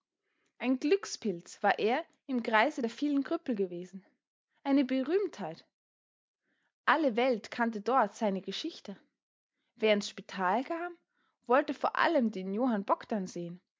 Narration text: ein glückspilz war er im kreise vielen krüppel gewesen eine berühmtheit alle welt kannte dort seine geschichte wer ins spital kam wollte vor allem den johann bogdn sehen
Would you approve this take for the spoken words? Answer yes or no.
no